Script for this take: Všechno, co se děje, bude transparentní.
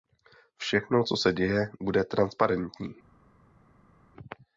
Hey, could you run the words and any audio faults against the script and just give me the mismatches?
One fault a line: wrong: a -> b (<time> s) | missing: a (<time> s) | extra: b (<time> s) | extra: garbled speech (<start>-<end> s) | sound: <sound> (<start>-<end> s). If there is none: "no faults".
no faults